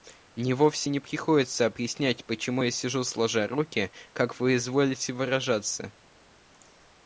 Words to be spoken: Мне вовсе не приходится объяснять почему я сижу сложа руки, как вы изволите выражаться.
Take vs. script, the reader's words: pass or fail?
pass